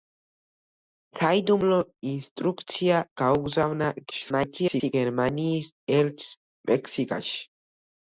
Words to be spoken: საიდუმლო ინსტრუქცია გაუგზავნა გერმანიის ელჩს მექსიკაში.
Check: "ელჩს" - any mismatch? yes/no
no